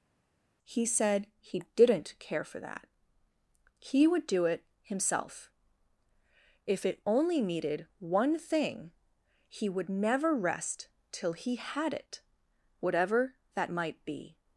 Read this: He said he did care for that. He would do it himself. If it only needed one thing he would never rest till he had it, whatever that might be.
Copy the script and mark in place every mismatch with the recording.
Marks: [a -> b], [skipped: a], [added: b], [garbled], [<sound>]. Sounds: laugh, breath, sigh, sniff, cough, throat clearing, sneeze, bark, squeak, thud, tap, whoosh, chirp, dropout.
He said he [did -> didn't] care for that. He would do it himself. If it only needed one thing he would never rest till he had it, whatever that might be.